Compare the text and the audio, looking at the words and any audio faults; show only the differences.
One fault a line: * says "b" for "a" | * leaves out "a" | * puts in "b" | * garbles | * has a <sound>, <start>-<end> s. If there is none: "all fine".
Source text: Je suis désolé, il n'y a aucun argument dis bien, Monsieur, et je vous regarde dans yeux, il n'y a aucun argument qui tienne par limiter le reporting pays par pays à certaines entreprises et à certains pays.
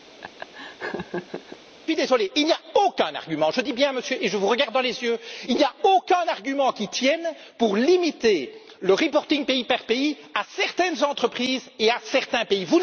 * has a laugh, 0.2-1.6 s
* puts in "je"
* puts in "les"
* says "pour" for "par"